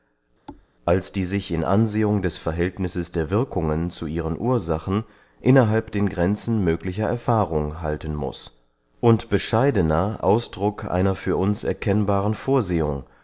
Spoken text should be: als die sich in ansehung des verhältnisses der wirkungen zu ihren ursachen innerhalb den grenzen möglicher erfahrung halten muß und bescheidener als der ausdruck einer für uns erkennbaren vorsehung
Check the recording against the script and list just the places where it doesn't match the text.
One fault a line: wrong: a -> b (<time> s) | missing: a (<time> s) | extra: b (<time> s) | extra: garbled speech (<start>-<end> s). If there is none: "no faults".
missing: als der (10.2 s)